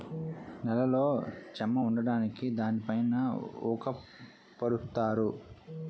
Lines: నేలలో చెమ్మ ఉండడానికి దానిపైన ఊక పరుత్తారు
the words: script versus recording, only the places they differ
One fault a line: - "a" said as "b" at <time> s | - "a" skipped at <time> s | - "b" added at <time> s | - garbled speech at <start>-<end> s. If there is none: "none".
none